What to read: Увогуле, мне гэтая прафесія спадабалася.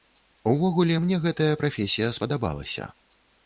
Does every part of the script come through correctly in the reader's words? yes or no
yes